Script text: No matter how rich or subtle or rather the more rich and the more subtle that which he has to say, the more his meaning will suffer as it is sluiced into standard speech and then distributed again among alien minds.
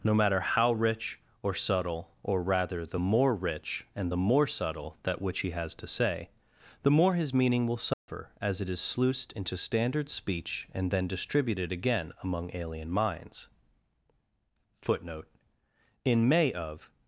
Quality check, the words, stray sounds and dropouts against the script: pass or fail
fail